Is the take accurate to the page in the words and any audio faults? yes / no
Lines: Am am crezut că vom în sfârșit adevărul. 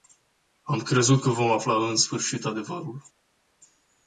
no